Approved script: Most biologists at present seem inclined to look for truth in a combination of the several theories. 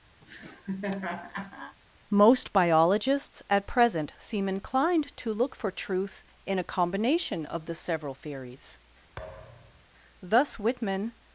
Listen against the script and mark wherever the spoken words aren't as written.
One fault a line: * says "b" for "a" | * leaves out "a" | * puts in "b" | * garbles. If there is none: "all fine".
* puts in "Thus Whitman"